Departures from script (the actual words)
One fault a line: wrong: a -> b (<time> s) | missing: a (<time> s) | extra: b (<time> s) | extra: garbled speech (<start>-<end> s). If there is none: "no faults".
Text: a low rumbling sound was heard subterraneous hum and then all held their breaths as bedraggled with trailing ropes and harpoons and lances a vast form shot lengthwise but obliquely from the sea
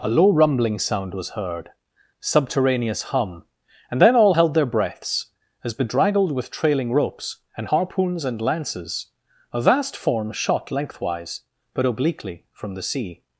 no faults